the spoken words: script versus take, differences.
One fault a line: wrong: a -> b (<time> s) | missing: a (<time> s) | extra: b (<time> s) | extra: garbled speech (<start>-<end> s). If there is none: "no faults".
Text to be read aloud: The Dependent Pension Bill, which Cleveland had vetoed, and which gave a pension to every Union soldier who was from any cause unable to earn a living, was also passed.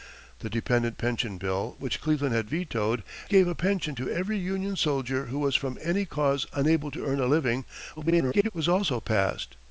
missing: and which (3.0 s)
extra: garbled speech (8.0-8.5 s)